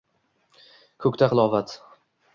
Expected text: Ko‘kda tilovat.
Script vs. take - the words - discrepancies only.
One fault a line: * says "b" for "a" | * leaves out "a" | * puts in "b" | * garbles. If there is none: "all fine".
all fine